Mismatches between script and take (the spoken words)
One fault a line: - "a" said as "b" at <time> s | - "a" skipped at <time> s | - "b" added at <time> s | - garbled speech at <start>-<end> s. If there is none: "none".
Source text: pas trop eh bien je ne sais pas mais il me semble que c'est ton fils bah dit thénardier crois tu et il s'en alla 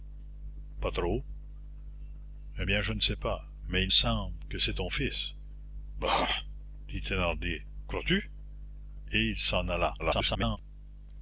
- "me" skipped at 3.9 s
- garbled speech at 10.0-10.6 s